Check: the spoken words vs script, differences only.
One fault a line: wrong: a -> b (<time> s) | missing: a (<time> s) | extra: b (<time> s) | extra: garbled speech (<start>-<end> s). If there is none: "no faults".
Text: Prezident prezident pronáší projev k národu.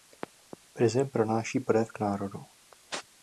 missing: prezident (1.1 s)